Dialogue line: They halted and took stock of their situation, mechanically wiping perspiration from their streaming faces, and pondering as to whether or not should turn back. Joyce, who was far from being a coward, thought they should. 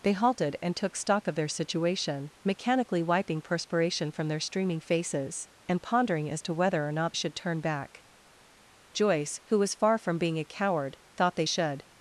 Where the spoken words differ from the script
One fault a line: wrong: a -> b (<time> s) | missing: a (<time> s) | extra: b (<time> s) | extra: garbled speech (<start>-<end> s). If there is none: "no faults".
no faults